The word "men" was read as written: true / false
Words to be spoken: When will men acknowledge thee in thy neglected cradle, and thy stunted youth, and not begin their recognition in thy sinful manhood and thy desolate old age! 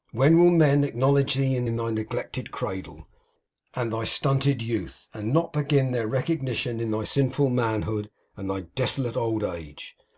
true